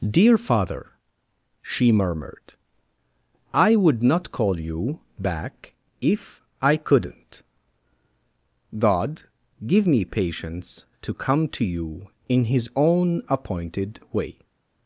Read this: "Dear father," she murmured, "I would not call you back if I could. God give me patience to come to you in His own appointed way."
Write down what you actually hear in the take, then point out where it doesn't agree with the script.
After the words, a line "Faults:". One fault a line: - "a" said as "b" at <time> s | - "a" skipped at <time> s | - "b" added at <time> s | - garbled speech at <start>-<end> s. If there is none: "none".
"Dear father," she murmured, "I would not call you back if I couldn't. God give me patience to come to you in His own appointed way."
Faults:
- "could" said as "couldn't" at 6.8 s